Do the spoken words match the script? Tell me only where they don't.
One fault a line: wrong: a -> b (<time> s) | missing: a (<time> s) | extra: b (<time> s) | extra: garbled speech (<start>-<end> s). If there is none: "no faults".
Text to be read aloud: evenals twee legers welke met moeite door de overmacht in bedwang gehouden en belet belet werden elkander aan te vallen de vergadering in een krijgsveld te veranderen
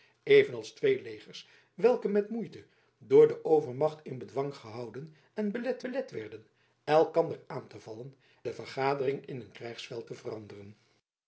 no faults